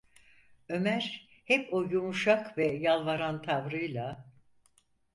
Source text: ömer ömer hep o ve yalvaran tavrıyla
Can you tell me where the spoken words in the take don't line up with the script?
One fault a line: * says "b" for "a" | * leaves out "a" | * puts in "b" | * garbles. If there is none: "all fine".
* leaves out "ömer"
* puts in "yumuşak"